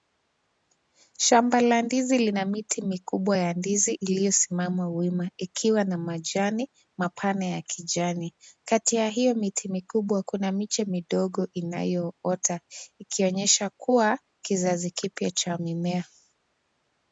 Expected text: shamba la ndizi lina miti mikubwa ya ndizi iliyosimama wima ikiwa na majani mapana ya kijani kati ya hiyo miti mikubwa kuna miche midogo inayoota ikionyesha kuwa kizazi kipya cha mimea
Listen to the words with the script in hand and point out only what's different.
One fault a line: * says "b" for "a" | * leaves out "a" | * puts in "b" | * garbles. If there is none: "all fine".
all fine